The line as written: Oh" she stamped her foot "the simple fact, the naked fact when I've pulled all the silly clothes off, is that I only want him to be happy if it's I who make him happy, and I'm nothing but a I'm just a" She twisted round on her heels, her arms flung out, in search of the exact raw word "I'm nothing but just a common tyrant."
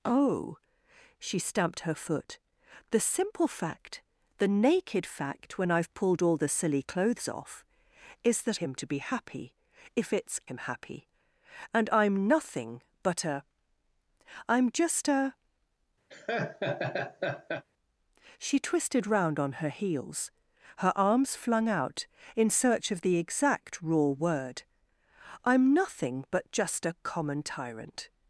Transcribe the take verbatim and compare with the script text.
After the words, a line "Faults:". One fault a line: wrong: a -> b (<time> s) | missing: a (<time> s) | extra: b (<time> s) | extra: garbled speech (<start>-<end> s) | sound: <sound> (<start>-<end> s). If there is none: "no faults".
Oh" she stamped her foot "the simple fact, the naked fact when I've pulled all the silly clothes off, is that him to be happy if it's him happy, and I'm nothing but a I'm just a" She twisted round on her heels, her arms flung out, in search of the exact raw word "I'm nothing but just a common tyrant."
Faults:
missing: I only want (8.6 s)
missing: I who make (10.4 s)
sound: laugh (16.1-17.6 s)